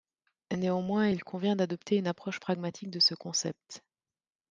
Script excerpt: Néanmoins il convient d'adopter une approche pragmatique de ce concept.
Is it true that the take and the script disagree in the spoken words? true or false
false